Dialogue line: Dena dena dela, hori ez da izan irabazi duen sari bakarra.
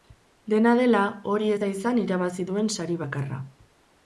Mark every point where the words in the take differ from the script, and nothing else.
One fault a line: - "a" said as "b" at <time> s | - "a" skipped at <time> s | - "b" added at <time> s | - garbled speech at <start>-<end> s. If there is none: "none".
- "dena" skipped at 0.7 s